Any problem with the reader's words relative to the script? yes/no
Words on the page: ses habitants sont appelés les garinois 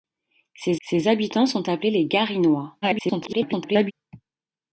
yes